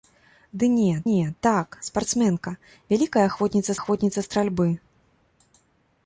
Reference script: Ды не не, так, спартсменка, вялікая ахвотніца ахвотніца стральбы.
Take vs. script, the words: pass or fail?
pass